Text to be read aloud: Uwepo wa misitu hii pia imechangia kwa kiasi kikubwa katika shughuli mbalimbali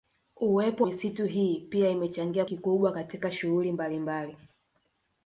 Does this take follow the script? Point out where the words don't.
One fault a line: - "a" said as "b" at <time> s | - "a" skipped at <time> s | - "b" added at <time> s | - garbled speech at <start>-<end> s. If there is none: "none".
- "wa" skipped at 0.8 s
- "kwa kiasi" skipped at 2.4 s